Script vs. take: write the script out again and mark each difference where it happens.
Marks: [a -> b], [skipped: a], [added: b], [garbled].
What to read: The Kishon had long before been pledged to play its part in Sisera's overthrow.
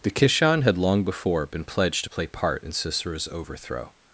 The Kishon had long before been pledged to play [skipped: its] part in Sisera's overthrow.